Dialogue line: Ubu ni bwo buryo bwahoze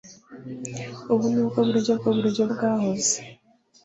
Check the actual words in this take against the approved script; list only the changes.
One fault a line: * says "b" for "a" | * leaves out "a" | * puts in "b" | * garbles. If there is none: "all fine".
* puts in "bwo buryo"